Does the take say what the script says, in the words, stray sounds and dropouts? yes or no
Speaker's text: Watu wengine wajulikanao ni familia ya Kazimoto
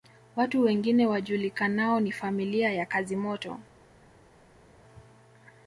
yes